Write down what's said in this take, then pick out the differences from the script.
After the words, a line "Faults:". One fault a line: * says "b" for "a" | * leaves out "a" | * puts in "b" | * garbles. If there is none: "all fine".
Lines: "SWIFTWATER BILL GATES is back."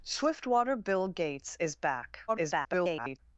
"SWIFTWATER BILL GATES is back." [garbled]
Faults:
* garbles